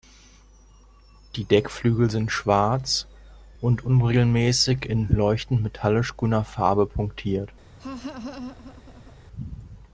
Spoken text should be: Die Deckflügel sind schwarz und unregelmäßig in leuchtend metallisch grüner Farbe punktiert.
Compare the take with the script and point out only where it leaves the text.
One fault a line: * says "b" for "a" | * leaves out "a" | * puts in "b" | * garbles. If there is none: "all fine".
all fine